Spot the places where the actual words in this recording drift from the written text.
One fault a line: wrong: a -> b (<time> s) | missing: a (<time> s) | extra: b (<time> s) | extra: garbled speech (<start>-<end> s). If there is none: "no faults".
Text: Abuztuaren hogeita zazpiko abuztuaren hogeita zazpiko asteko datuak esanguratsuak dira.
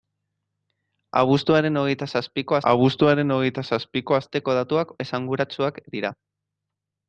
no faults